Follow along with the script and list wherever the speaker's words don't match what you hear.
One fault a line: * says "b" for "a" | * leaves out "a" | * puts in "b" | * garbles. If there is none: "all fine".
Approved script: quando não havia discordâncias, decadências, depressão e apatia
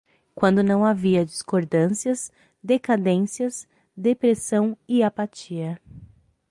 all fine